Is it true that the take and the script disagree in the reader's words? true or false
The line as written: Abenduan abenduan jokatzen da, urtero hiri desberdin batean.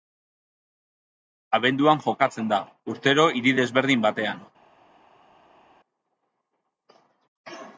true